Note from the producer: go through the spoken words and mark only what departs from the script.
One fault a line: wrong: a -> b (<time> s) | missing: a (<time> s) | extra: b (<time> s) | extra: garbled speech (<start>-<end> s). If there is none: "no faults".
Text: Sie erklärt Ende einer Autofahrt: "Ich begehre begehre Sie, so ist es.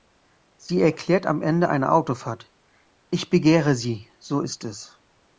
extra: am (1.3 s)
missing: begehre (3.8 s)